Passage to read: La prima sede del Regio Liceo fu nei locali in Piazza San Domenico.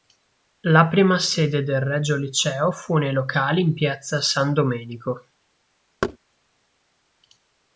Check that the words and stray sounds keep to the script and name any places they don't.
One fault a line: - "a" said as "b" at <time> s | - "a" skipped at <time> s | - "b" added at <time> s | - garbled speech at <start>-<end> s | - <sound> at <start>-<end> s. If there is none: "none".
- thud at 6.0-6.2 s